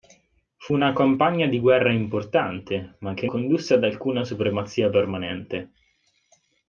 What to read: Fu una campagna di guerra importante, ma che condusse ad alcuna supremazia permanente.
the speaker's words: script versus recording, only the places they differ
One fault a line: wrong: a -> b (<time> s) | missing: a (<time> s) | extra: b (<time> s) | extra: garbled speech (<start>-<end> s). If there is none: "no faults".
no faults